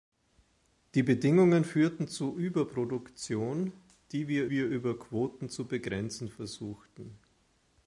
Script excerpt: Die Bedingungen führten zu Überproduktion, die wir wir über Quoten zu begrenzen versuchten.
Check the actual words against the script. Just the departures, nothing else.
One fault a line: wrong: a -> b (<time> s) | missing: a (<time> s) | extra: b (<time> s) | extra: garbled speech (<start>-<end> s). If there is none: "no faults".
no faults